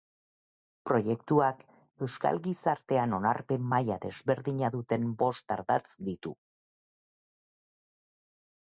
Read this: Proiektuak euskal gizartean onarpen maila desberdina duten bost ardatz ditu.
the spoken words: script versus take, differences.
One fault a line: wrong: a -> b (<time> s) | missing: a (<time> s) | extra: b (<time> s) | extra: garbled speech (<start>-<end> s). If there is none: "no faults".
no faults